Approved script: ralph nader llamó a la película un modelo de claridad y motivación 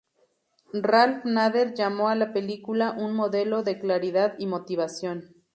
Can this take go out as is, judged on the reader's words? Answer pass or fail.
pass